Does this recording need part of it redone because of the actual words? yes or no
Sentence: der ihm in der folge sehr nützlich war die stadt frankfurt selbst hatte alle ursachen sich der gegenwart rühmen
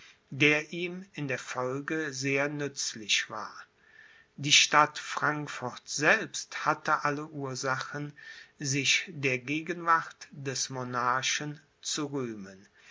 yes